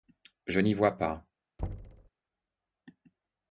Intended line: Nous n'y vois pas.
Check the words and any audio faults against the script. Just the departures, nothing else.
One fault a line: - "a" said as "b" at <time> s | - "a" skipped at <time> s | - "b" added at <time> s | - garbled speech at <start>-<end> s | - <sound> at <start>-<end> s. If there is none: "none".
- "Nous" said as "Je" at 0.5 s
- thud at 1.6-2.1 s